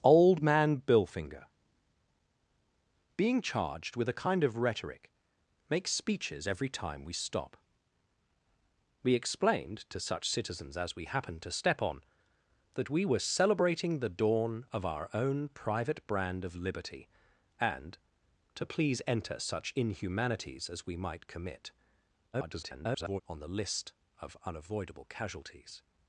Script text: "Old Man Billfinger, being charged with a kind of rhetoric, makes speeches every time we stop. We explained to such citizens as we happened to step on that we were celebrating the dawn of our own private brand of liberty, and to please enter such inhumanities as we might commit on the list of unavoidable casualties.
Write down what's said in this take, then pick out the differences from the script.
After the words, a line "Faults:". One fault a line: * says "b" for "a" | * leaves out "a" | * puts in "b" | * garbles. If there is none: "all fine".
"Old Man Billfinger, being charged with a kind of rhetoric, makes speeches every time we stop. We explained to such citizens as we happened to step on that we were celebrating the dawn of our own private brand of liberty, and to please enter such inhumanities as we might commit [garbled] on the list of unavoidable casualties.
Faults:
* garbles